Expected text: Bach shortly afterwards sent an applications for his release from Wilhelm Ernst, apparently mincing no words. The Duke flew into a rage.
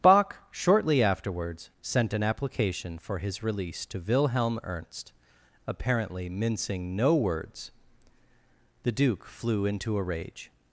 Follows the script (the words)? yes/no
no